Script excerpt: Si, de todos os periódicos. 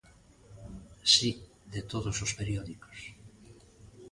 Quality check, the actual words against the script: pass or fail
pass